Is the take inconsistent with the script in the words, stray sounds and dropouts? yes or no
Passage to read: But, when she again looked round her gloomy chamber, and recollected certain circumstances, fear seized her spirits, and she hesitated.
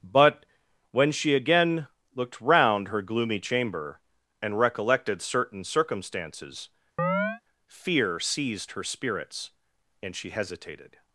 yes